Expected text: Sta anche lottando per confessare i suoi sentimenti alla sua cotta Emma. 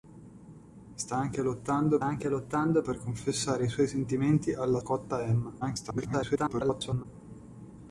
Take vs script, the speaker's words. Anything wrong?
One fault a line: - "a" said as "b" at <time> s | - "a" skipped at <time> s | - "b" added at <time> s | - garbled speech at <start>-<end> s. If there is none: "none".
- "anche lottando" added at 2.0 s
- "sua" skipped at 4.8 s
- garbled speech at 5.6-7.1 s